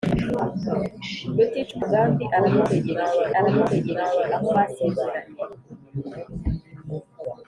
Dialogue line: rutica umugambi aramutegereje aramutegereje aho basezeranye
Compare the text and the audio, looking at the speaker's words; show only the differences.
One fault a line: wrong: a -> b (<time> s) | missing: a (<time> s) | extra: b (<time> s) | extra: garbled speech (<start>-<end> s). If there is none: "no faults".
no faults